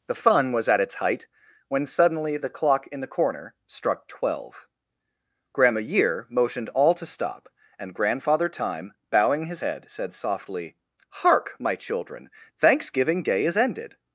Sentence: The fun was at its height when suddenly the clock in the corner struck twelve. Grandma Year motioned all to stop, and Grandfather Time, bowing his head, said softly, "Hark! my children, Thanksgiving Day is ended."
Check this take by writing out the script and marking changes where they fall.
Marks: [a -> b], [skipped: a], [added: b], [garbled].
The fun was at its height when suddenly the clock in the corner struck twelve. Grandma Year motioned all to stop, and Grandfather Time, bowing his head, said softly, "Hark! my children, Thanksgiving Day is ended."